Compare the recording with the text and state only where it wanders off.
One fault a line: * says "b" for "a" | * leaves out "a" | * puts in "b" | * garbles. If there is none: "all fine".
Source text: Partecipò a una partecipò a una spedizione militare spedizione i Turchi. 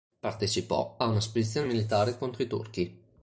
* leaves out "partecipò a una"
* says "contro" for "spedizione"